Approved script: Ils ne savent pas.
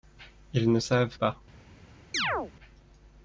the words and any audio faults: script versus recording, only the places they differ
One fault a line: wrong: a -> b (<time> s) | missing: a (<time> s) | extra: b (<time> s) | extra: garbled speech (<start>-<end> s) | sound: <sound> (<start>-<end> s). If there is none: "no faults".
sound: chirp (2.1-2.5 s)